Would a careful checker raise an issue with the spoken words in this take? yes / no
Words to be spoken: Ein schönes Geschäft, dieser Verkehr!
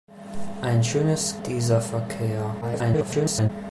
yes